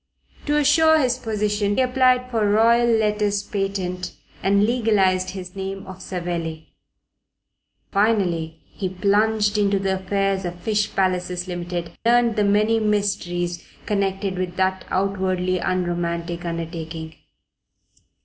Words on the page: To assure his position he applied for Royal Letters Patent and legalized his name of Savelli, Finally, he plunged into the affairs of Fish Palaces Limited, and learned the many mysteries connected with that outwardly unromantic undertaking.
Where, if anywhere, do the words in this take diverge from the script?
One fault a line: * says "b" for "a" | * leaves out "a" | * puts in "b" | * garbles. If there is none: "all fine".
* leaves out "he"
* leaves out "and"